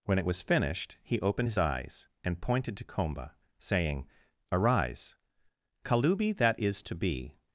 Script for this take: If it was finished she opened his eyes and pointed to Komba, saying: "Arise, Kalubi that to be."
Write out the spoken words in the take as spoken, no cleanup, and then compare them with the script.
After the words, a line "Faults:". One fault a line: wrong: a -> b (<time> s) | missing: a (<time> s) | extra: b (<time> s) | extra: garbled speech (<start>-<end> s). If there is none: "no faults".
When it was finished he opened his eyes and pointed to Komba, saying: "Arise, Kalubi that is to be."
Faults:
wrong: If -> When (0.1 s)
wrong: she -> he (1.0 s)
extra: is (6.6 s)